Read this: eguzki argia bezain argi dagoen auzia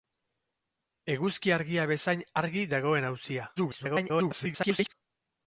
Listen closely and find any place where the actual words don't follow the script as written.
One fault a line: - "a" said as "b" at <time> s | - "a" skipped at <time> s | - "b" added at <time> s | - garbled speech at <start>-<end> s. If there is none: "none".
- garbled speech at 3.6-4.9 s